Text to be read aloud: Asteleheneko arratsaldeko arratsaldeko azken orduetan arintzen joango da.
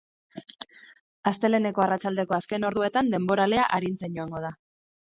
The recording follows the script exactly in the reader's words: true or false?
false